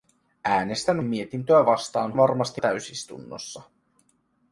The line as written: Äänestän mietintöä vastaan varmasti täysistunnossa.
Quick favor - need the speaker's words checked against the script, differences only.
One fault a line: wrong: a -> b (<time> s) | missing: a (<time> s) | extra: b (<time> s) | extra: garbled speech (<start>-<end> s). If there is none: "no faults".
no faults